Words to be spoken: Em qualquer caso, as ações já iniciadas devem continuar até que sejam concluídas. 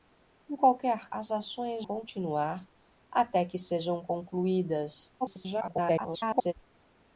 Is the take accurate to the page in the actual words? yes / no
no